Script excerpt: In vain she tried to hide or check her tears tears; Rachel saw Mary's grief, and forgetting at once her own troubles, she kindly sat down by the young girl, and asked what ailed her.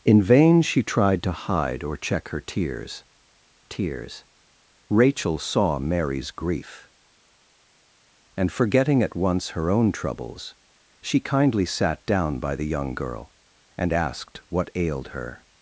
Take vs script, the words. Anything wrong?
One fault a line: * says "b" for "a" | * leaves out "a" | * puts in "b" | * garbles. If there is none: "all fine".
all fine